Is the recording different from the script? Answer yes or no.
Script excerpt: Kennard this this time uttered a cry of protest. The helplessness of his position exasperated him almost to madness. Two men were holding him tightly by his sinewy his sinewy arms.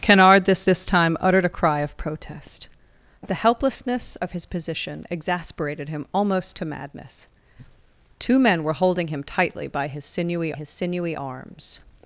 no